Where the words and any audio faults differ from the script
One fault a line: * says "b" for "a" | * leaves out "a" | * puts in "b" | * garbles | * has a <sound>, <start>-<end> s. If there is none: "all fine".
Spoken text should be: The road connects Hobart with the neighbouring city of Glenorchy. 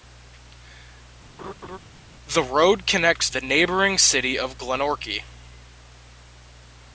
* has a laugh, 1.4-1.8 s
* leaves out "Hobart with"